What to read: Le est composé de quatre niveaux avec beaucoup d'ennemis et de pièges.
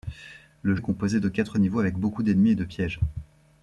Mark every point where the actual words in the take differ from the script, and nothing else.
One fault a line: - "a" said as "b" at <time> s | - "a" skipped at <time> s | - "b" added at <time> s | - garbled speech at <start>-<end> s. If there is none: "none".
none